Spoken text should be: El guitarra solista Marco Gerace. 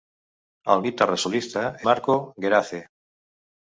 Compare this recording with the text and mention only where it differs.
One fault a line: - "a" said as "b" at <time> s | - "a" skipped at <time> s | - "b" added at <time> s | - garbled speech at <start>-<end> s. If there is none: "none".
none